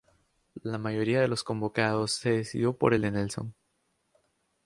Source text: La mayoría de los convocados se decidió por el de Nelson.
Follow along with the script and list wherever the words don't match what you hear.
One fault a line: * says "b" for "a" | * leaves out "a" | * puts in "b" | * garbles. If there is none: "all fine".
all fine